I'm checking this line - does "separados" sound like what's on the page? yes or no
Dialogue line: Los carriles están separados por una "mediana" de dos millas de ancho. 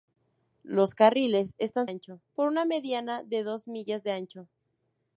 no